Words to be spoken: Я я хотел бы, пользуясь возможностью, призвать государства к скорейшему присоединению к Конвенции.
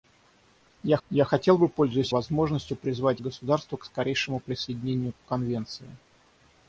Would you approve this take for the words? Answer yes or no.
yes